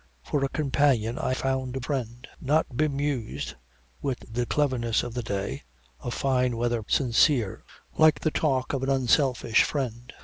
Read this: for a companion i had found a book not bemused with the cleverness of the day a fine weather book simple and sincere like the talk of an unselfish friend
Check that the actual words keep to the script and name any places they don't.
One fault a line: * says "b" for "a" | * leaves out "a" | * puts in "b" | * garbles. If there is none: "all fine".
* leaves out "had"
* says "friend" for "book"
* leaves out "book simple and"